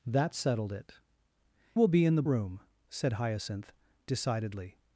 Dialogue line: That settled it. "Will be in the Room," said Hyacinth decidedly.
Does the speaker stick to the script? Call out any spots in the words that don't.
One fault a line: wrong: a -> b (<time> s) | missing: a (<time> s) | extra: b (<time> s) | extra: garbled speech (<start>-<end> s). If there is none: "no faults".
no faults